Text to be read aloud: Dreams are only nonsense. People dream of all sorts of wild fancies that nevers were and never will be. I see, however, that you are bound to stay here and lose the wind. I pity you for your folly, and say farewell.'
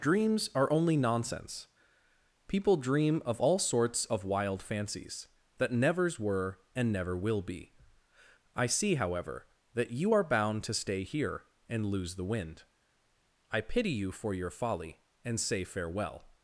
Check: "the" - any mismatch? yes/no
no